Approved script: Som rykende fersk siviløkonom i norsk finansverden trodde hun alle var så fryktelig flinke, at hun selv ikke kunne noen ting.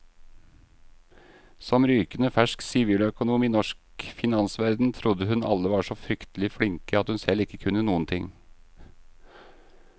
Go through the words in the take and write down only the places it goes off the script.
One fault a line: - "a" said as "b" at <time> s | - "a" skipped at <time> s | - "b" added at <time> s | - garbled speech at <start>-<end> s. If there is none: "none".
none